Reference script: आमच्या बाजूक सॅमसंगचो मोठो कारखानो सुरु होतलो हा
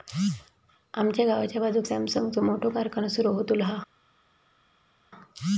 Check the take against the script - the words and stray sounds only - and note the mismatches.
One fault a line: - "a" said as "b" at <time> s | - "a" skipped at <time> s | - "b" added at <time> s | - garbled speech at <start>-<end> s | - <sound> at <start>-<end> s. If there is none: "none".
- "गावाच्या" added at 1.2 s